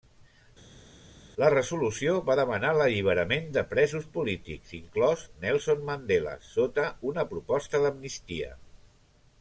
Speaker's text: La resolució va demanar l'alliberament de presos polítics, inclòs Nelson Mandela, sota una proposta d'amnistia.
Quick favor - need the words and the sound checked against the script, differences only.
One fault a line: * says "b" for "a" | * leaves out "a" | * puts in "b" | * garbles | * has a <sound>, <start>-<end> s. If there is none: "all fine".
all fine